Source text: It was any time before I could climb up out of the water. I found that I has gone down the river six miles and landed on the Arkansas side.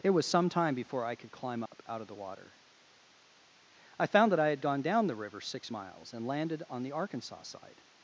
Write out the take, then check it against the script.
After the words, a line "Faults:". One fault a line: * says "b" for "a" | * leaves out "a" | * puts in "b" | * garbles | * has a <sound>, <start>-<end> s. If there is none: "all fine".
It was some time before I could climb up out of the water. I found that I had gone down the river six miles and landed on the Arkansas side.
Faults:
* says "some" for "any"
* has a dropout, 1.7-1.7 s
* says "had" for "has"